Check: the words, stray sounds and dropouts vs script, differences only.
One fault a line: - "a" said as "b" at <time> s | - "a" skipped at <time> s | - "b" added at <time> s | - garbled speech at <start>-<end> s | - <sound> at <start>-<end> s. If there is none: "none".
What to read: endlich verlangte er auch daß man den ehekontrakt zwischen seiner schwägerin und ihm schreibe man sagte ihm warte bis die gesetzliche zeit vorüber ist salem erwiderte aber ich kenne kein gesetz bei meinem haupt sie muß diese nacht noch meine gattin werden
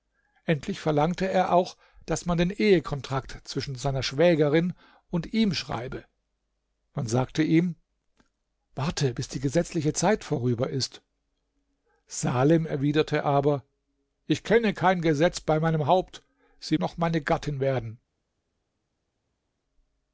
- "muß diese nacht" skipped at 16.8 s